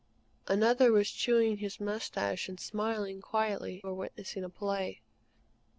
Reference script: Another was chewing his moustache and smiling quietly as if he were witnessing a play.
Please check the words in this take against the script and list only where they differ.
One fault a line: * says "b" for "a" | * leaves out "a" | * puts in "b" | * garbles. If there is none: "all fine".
* leaves out "as if he"